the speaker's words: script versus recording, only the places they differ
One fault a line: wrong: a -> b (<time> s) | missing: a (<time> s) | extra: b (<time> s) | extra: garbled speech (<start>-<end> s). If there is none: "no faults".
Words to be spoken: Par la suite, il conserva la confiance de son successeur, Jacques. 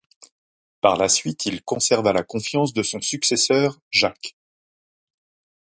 no faults